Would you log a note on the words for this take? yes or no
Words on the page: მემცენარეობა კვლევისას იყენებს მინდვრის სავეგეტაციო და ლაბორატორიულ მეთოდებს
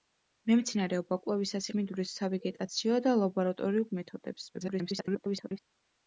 yes